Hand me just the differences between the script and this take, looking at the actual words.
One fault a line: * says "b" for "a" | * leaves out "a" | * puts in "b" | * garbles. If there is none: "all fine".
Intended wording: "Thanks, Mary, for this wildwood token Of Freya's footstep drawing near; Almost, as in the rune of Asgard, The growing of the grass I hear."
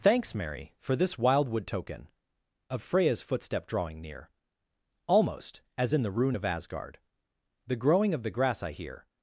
all fine